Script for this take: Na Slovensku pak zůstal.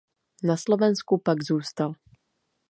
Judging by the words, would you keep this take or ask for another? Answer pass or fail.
pass